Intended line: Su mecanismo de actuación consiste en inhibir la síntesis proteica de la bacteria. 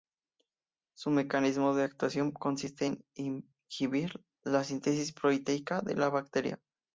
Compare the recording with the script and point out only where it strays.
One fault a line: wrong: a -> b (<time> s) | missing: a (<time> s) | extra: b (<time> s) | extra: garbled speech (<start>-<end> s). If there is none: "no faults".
no faults